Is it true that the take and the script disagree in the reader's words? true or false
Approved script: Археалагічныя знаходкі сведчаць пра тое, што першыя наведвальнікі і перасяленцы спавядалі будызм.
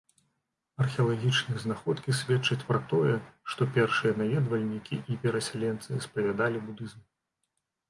false